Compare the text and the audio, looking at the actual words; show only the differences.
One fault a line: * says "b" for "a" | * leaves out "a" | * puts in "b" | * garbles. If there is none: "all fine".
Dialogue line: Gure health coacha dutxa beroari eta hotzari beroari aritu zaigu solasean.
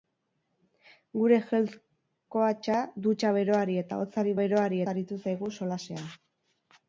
all fine